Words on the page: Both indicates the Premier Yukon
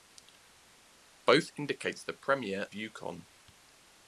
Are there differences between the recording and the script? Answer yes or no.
no